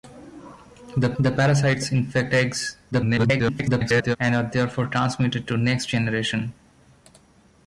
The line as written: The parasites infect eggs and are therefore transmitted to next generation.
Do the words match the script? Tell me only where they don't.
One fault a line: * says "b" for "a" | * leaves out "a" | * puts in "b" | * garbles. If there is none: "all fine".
* puts in "the"
* garbles